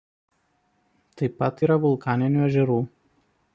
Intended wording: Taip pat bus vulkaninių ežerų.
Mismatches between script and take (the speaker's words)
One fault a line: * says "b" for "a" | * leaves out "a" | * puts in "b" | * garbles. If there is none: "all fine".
* says "yra" for "bus"